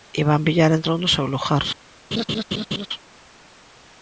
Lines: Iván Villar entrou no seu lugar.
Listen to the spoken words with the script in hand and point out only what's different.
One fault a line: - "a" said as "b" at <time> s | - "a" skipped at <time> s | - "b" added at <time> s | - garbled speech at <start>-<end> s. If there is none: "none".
none